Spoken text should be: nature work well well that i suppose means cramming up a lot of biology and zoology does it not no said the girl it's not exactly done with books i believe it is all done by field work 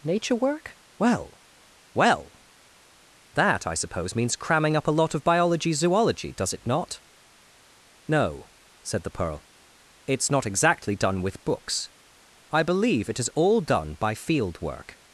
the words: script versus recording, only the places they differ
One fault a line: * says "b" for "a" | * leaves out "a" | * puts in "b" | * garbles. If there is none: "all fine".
* leaves out "and"
* says "pearl" for "girl"